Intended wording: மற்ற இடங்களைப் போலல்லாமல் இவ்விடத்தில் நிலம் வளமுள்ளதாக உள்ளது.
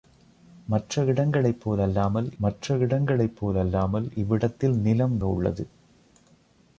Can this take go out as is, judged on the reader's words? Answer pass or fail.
fail